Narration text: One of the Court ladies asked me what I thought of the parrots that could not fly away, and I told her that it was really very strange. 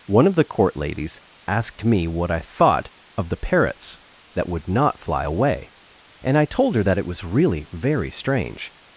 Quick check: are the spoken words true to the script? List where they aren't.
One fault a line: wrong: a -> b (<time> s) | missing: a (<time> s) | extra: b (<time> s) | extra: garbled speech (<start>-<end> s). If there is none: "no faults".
wrong: could -> would (4.5 s)